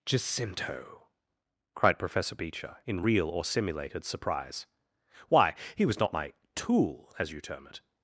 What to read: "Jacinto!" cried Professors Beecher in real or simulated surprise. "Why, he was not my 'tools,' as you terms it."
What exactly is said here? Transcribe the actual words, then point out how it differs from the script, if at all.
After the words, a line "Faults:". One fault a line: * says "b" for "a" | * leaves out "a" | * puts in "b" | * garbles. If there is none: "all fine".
"Jacinto!" cried Professor Beecher in real or simulated surprise. "Why, he was not my 'tool,' as you term it."
Faults:
* says "Professor" for "Professors"
* says "tool" for "tools"
* says "term" for "terms"